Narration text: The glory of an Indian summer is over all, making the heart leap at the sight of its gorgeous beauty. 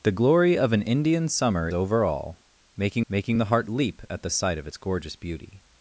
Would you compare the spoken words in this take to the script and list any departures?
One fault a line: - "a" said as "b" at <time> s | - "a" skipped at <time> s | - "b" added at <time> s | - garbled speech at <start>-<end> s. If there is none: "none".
- "is" skipped at 1.7 s
- "making" added at 3.1 s